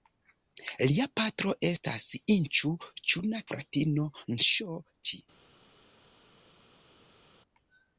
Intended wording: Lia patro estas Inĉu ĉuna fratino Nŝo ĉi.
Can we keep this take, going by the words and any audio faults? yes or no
yes